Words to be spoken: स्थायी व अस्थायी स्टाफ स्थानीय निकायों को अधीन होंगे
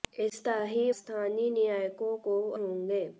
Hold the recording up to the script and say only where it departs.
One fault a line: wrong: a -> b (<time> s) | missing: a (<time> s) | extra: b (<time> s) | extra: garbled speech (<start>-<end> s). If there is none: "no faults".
missing: व अस्थायी स्टाफ (0.9 s)
missing: अधीन (2.4 s)